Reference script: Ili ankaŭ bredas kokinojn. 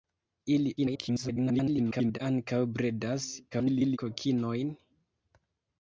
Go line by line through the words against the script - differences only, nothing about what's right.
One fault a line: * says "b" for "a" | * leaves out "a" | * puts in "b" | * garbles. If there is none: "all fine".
* garbles
* garbles